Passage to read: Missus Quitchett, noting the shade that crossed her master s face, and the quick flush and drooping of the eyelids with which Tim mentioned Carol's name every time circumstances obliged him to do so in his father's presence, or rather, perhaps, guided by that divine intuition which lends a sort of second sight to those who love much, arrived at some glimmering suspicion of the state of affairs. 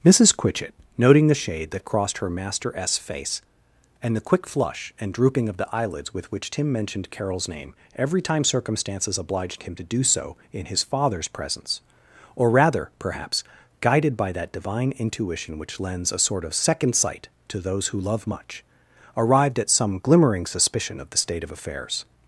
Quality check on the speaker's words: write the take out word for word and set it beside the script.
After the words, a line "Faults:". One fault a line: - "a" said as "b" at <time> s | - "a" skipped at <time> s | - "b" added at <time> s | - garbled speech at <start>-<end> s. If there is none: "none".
Missus Quitchett, noting the shade that crossed her master s face, and the quick flush and drooping of the eyelids with which Tim mentioned Carol's name every time circumstances obliged him to do so in his father's presence, or rather, perhaps, guided by that divine intuition which lends a sort of second sight to those who love much, arrived at some glimmering suspicion of the state of affairs.
Faults:
none